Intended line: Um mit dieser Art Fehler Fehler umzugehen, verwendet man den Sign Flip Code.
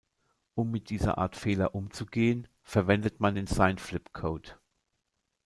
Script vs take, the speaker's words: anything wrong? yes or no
yes